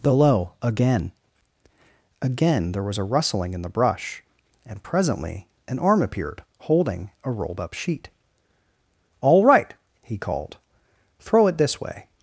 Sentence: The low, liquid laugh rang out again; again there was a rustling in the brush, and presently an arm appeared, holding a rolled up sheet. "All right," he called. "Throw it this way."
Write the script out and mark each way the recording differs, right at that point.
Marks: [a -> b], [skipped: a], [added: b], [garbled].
The low, [skipped: liquid laugh rang out] again; again there was a rustling in the brush, and presently an arm appeared, holding a rolled up sheet. "All right," he called. "Throw it this way."